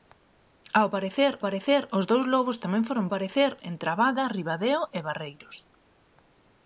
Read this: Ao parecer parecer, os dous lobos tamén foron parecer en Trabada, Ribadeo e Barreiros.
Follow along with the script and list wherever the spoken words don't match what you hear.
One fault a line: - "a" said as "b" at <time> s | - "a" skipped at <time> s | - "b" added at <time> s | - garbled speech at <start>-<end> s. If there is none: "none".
none